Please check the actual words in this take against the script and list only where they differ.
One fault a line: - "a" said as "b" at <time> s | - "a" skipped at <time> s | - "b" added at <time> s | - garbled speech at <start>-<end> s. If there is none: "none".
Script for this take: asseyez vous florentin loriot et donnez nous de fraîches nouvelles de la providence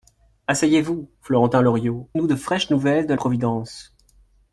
- "et donnez" skipped at 2.1 s
- "la" skipped at 3.1 s